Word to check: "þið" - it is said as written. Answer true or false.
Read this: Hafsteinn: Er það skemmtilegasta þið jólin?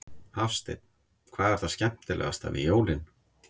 false